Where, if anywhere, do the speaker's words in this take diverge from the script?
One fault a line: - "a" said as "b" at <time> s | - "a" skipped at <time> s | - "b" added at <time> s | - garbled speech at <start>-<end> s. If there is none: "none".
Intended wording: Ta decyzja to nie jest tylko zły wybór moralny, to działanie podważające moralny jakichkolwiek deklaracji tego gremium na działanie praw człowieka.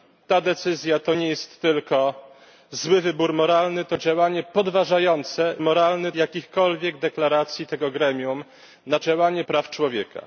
none